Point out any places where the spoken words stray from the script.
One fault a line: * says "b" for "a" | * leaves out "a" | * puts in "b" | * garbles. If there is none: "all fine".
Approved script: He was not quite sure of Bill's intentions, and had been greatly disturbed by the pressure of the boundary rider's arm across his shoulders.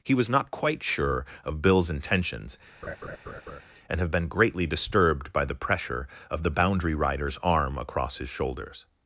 * says "have" for "had"